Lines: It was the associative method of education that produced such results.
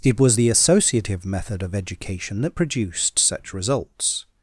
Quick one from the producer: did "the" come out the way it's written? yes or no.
yes